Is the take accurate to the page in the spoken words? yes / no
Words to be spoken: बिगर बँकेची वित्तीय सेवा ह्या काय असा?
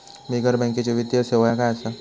yes